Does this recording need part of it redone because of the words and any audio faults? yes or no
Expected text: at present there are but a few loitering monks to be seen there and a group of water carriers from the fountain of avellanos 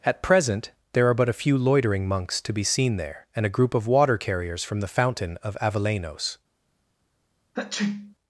yes